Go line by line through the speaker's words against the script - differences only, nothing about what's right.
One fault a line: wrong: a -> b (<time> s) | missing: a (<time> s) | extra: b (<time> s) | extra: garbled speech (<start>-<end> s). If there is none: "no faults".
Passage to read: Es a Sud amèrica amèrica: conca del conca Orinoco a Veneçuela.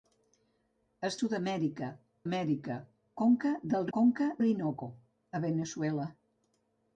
no faults